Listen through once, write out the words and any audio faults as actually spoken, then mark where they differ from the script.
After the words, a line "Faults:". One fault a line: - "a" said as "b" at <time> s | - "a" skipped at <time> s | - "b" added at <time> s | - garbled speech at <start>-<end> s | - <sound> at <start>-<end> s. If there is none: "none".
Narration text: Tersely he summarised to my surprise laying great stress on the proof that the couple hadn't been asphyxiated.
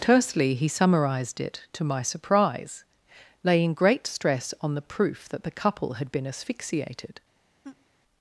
Tersely he summarised it, to my surprise laying great stress on the proof that the couple had been asphyxiated.
Faults:
- "it" added at 1.4 s
- "hadn't" said as "had" at 5.9 s
- laugh at 7.6-7.9 s